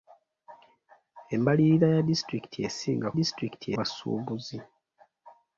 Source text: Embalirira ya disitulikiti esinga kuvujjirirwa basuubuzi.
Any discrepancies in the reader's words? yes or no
yes